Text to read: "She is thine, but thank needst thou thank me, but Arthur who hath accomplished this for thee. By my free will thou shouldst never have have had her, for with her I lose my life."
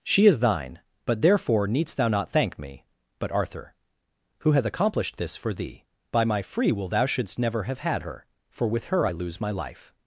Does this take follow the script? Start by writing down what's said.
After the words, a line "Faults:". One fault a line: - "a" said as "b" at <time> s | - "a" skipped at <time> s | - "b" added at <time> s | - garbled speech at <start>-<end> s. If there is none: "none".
"She is thine, but therefore needst thou not thank me, but Arthur who hath accomplished this for thee. By my free will thou shouldst never have had her, for with her I lose my life."
Faults:
- "thank" said as "therefore" at 1.2 s
- "not" added at 2.1 s
- "have" skipped at 7.8 s